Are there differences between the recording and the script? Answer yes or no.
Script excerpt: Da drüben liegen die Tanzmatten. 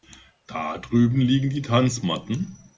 no